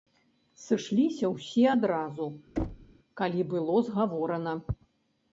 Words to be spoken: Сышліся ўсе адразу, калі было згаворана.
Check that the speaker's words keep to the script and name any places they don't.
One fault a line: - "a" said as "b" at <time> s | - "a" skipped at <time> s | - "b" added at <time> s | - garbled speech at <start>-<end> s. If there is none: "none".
none